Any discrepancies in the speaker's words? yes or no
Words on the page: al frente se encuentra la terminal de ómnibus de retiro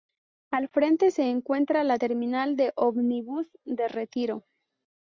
no